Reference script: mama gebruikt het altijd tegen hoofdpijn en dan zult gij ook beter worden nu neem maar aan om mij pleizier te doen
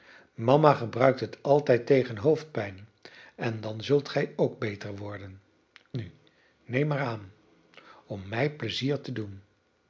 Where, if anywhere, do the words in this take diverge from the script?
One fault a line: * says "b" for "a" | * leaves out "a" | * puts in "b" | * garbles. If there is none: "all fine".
all fine